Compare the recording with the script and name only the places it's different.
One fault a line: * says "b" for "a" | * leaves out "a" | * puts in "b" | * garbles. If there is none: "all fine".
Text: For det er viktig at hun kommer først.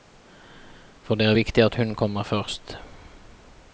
all fine